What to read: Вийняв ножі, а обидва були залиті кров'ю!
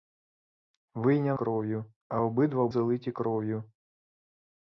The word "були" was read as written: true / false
false